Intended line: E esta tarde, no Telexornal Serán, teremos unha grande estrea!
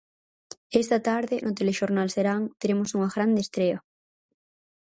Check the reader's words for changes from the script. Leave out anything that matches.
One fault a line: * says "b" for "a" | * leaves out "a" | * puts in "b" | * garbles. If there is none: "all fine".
all fine